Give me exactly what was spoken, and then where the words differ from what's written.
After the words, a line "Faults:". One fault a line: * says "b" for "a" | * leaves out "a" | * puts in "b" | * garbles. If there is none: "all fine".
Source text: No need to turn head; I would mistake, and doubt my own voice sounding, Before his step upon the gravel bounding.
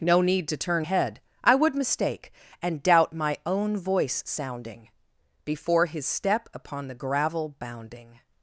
No need to turn head; I would mistake, and doubt my own voice sounding, Before his step upon the gravel bounding.
Faults:
all fine